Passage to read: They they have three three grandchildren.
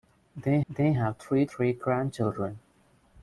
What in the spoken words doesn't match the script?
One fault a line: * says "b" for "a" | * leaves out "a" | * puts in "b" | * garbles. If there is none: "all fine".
all fine